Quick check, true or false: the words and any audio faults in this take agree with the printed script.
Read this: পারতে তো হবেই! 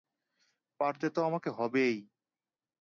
false